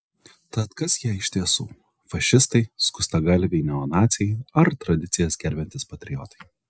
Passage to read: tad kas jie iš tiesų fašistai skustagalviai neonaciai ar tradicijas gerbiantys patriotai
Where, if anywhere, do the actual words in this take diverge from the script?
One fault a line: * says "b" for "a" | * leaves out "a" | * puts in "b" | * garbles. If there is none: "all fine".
all fine